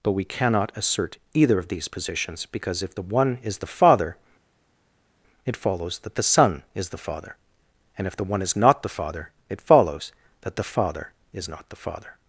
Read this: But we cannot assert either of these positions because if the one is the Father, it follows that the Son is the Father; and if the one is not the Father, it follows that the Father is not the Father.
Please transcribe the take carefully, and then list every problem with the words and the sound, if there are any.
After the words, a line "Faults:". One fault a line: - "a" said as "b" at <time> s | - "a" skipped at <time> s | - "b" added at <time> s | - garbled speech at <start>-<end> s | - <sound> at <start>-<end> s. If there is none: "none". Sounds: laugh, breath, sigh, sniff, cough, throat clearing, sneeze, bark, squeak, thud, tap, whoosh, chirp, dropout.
But we cannot assert either of these positions because if the one is the Father, it follows that the Son is the Father; and if the one is not the Father, it follows that the Father is not the Father.
Faults:
none